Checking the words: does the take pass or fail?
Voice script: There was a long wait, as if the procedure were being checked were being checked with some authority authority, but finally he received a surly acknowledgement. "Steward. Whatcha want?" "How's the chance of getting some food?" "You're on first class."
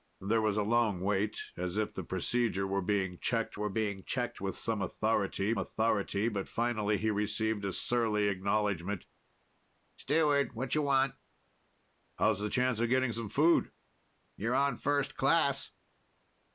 pass